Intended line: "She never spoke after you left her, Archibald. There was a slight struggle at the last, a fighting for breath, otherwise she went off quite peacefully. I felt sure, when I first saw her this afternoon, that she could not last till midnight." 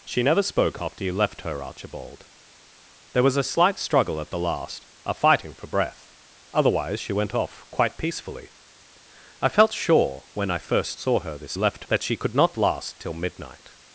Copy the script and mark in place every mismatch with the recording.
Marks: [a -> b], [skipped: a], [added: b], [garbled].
"She never spoke after you left her, Archibald. There was a slight struggle at the last, a fighting for breath, otherwise she went off quite peacefully. I felt sure, when I first saw her this [afternoon, -> left] that she could not last till midnight."